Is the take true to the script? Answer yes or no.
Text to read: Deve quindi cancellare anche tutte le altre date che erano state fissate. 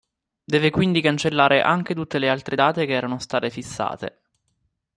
yes